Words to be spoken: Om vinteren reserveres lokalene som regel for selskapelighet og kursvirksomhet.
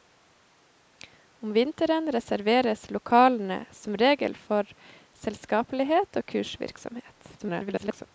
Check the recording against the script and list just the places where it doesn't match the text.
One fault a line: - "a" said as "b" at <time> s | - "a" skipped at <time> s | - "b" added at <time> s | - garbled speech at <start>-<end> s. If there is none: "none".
- garbled speech at 7.4-8.1 s